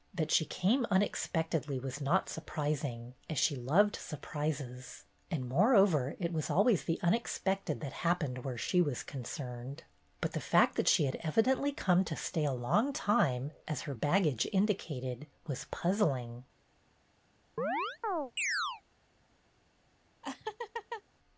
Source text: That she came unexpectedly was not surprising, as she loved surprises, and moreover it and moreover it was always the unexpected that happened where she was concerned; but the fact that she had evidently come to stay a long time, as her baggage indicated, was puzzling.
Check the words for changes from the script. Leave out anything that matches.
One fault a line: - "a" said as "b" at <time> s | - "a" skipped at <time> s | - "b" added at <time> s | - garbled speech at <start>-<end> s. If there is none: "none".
- "and moreover it" skipped at 6.3 s